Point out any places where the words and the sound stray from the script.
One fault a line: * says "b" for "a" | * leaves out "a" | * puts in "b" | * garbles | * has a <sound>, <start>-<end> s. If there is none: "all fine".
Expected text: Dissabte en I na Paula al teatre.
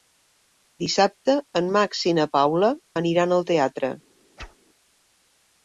* puts in "Max"
* puts in "aniran"
* has a whoosh, 4.4-4.6 s